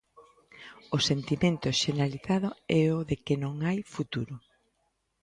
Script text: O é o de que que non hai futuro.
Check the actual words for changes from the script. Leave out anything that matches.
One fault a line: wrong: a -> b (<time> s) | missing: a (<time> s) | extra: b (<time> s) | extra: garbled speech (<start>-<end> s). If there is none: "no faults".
extra: sentimento xeneralizado (1.1 s)
missing: que (3.4 s)